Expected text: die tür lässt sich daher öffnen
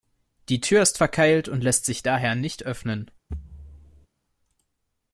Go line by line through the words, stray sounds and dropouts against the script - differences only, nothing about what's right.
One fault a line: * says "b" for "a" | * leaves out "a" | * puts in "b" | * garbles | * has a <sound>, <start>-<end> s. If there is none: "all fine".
* puts in "ist verkeilt und"
* puts in "nicht"
* has a thud, 3.3-4.1 s